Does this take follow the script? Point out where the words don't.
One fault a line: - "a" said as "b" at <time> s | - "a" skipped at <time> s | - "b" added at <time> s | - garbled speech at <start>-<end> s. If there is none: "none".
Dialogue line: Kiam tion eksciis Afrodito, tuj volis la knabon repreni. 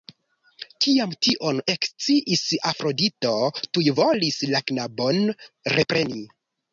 none